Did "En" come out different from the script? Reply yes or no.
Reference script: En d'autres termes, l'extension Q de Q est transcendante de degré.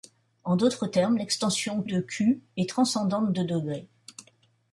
no